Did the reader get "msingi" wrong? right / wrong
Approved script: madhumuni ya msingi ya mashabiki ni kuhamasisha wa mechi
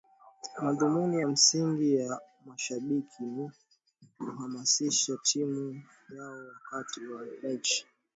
right